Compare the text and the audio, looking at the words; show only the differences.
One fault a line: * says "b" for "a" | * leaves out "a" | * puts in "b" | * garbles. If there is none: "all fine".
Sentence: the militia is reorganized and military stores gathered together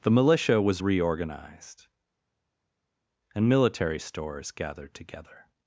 * says "was" for "is"